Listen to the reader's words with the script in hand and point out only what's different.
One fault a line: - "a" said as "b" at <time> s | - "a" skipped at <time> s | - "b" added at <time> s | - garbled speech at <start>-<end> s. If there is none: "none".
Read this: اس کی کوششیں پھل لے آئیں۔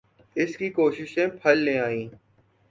none